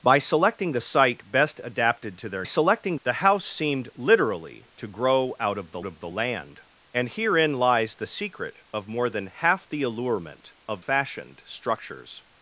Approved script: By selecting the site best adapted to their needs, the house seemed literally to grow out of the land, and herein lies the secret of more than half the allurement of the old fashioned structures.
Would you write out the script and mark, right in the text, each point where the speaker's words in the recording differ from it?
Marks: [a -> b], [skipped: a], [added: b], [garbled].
By selecting the site best adapted to their [needs, -> selecting] the house seemed literally to grow out of the [added: of the] land, and herein lies the secret of more than half the allurement of [skipped: the old] fashioned structures.